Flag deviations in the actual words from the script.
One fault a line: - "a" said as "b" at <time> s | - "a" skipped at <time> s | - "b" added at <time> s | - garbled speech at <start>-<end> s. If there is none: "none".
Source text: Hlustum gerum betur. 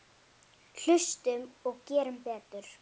- "og" added at 1.7 s